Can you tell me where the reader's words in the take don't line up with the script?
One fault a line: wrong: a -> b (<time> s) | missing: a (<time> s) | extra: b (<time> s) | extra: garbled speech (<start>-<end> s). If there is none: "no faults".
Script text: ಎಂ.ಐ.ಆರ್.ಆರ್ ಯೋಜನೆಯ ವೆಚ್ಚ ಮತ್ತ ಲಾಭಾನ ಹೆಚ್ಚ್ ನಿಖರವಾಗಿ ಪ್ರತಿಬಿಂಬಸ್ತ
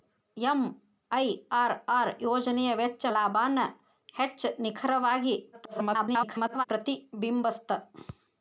missing: ಮತ್ತ (3.0 s)
extra: garbled speech (5.5-6.6 s)